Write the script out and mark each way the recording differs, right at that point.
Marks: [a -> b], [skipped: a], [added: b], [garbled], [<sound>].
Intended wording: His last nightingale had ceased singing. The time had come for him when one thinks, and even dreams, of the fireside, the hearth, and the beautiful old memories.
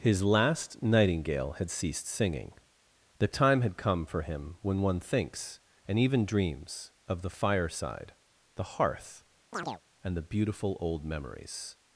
His last nightingale had ceased singing. The time had come for him when one thinks, and even dreams, of the fireside, the hearth, [chirp] and the beautiful old memories.